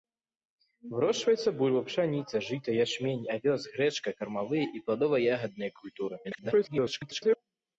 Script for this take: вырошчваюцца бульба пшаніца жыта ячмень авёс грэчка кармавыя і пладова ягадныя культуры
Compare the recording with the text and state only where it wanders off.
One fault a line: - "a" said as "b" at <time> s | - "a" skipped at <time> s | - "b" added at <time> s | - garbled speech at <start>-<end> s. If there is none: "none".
- garbled speech at 6.2-7.4 s